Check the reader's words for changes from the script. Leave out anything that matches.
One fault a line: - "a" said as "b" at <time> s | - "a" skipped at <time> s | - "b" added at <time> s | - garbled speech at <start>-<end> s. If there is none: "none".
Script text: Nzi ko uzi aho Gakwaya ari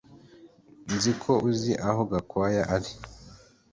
none